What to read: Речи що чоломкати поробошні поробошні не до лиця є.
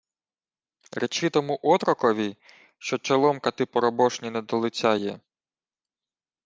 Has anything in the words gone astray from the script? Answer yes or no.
yes